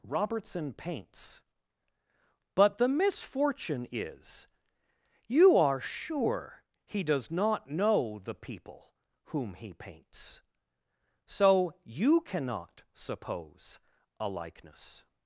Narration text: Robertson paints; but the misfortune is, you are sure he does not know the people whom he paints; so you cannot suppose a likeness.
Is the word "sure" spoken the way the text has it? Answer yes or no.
yes